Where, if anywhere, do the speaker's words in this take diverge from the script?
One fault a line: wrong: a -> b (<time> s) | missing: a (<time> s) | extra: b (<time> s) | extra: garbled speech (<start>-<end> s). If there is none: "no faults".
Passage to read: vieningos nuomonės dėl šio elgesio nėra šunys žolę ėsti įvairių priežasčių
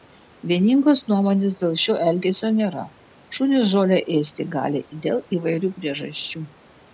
extra: gali dėl (4.6 s)